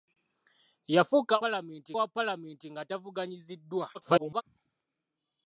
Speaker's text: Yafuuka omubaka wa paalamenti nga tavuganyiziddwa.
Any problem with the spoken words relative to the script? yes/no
yes